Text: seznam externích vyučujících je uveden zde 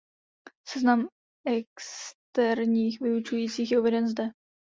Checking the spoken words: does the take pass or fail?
pass